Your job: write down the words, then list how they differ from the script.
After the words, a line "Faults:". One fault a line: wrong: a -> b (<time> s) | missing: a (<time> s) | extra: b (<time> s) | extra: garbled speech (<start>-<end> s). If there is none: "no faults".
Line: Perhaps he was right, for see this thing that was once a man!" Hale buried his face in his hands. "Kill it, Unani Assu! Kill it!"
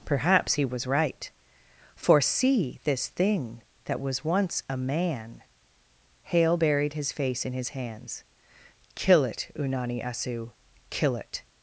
Perhaps he was right, for see this thing that was once a man!" Hale buried his face in his hands. "Kill it, Unani Assu! Kill it!"
Faults:
no faults